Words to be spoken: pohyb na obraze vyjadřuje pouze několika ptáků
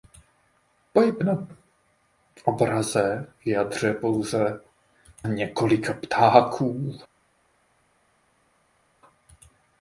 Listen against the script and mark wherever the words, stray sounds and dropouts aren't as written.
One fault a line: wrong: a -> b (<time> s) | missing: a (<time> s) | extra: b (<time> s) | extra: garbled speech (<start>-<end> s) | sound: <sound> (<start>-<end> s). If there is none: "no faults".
no faults